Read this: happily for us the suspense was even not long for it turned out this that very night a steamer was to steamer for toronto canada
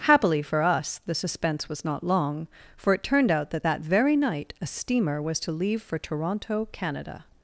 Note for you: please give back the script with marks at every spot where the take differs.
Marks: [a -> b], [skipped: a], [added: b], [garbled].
happily for us the suspense was [skipped: even] not long for it turned out [this -> that] that very night a steamer was to [steamer -> leave] for toronto canada